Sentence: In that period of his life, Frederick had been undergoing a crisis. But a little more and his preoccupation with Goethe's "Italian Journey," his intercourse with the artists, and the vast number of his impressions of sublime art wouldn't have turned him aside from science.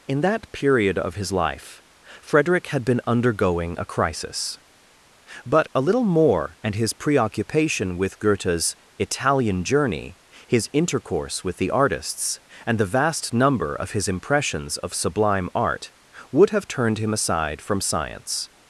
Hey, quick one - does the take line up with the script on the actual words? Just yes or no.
no